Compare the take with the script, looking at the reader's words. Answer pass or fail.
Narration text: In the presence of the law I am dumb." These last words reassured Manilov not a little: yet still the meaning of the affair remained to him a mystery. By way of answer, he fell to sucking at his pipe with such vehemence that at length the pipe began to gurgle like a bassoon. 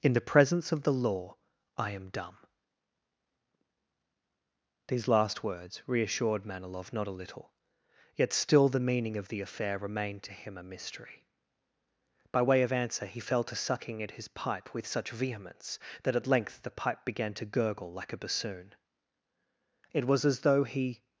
fail